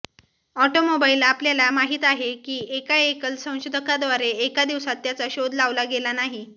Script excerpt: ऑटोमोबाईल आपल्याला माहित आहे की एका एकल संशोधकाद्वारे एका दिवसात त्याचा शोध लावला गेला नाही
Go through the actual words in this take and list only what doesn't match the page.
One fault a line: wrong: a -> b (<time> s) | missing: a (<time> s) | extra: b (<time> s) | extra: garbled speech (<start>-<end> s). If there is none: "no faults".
no faults